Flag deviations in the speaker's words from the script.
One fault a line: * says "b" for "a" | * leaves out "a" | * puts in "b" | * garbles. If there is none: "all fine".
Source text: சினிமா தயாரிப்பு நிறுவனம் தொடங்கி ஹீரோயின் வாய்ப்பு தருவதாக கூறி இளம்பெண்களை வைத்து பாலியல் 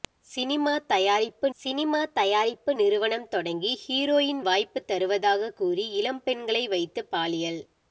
* puts in "சினிமா தயாரிப்பு"